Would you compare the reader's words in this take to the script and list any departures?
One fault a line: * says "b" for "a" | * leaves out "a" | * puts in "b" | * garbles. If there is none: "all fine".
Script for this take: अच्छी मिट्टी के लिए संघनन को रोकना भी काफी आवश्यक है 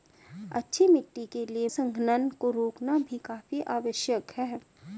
all fine